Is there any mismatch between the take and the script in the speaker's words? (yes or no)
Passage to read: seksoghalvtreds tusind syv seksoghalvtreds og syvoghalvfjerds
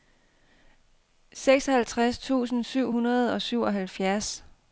yes